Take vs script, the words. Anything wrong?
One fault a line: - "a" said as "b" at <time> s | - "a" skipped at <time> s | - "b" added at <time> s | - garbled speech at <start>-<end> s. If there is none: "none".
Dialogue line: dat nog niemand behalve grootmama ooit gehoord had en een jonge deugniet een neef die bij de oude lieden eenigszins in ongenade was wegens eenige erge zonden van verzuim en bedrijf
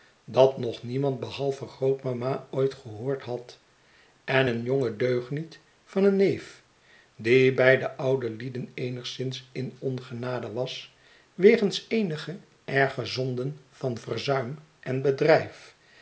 - "van" added at 5.8 s